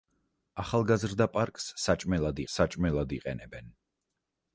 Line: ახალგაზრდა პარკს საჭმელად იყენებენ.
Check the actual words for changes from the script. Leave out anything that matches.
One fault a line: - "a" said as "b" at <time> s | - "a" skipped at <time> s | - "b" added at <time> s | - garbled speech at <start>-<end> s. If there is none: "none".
- "საჭმელად" added at 2.6 s